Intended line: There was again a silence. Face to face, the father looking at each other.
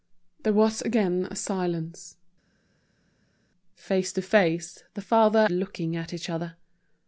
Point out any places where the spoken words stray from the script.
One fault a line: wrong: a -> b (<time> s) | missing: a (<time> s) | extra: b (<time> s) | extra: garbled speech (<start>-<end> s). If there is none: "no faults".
no faults